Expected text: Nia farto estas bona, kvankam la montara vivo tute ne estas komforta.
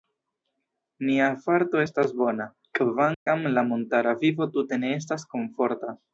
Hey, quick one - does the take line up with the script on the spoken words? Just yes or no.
yes